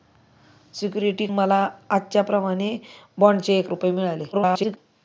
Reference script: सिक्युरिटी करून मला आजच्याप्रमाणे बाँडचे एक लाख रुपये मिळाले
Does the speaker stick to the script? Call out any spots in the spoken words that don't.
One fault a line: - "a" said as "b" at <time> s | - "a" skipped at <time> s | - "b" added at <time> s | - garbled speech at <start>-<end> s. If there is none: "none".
- "करून" skipped at 1.2 s
- "लाख" skipped at 3.7 s
- garbled speech at 4.3-4.8 s